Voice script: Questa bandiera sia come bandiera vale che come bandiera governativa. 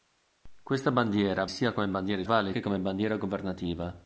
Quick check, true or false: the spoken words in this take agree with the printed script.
true